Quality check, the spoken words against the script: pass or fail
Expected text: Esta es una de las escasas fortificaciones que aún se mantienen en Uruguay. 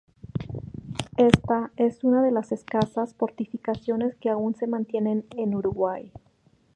pass